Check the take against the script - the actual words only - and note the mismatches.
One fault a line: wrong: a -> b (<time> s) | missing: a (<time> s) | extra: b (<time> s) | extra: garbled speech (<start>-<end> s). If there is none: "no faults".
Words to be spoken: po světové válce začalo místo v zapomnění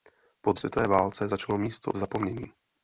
no faults